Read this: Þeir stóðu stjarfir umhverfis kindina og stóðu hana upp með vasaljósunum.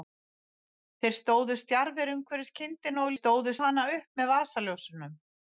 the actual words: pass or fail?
pass